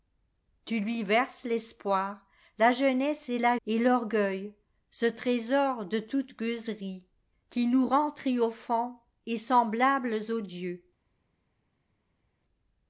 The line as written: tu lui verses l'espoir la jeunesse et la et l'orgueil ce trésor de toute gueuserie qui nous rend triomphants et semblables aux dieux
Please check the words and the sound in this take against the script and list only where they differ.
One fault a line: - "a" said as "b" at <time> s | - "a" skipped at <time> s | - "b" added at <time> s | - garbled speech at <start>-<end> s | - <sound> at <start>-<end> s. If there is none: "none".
none